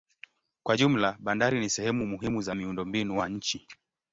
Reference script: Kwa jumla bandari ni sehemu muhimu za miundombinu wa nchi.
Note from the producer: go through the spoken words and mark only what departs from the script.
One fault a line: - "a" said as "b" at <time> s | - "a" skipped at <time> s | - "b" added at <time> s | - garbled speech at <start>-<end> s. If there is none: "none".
none